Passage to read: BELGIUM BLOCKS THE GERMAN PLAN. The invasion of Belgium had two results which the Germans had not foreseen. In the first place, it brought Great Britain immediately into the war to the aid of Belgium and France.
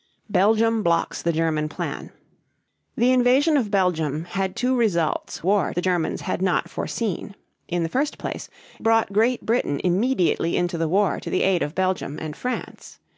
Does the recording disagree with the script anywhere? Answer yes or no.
yes